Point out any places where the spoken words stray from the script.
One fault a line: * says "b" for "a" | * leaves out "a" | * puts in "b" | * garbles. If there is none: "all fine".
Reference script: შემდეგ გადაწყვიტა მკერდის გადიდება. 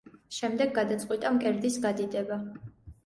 all fine